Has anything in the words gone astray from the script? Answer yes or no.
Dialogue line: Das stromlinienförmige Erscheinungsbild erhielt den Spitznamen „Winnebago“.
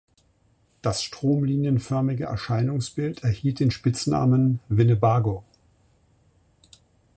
no